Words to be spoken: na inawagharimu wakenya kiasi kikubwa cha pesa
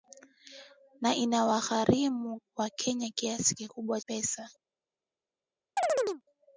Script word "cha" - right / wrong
wrong